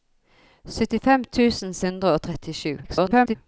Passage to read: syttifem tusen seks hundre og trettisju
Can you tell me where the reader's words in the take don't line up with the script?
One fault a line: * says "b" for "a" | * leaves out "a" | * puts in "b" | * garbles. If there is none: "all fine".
* leaves out "seks"
* garbles